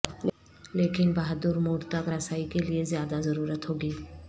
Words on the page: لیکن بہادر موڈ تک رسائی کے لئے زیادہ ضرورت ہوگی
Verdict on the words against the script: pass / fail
pass